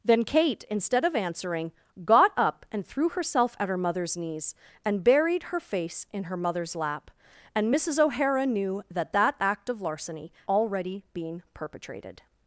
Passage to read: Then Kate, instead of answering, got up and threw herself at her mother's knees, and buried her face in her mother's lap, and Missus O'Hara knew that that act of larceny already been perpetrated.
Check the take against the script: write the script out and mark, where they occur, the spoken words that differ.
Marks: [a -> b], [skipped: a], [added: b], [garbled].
Then Kate, instead of answering, got up and threw herself at her mother's knees, and buried her face in her mother's lap, and Missus O'Hara knew that that act of larceny already been perpetrated.